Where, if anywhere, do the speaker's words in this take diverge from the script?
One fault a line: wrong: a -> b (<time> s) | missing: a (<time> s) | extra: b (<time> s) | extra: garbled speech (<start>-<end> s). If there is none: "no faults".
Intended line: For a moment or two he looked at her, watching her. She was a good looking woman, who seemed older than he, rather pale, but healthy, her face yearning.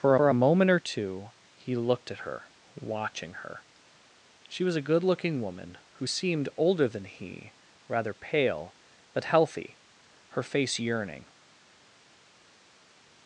extra: for (0.2 s)